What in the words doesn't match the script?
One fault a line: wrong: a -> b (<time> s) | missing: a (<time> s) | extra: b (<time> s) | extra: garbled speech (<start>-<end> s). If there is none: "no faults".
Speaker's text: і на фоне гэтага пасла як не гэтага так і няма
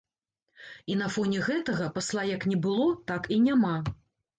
wrong: гэтага -> было (2.7 s)